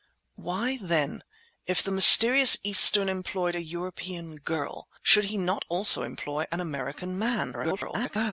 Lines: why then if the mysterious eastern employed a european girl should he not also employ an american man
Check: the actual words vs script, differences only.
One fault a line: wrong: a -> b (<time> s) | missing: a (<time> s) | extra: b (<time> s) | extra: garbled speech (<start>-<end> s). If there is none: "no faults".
extra: garbled speech (7.5-8.3 s)